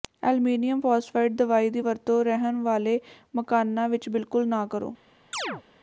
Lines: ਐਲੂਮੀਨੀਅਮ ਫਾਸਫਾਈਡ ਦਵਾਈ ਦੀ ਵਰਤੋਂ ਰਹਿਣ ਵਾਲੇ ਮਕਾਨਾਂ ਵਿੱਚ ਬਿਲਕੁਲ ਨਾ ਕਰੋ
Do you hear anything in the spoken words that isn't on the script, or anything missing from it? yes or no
no